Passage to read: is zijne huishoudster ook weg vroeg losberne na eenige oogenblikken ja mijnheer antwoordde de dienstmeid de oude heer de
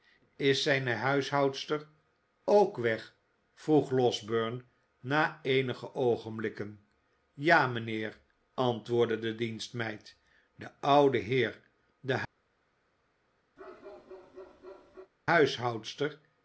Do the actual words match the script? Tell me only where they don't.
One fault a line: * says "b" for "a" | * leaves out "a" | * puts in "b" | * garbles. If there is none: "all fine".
all fine